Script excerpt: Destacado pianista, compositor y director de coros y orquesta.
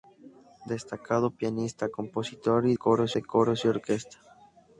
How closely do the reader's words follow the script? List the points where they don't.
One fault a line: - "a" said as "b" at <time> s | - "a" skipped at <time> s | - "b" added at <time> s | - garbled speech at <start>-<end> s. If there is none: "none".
- "director" said as "coros" at 2.7 s